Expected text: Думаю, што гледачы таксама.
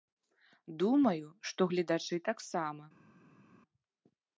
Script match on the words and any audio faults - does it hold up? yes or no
yes